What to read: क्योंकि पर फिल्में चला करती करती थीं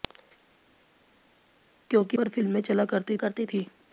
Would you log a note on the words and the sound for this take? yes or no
no